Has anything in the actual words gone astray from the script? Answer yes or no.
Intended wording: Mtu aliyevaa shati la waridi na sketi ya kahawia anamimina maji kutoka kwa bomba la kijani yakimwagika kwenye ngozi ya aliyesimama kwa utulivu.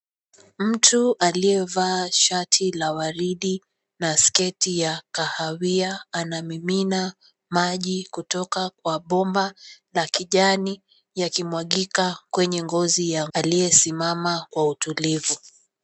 no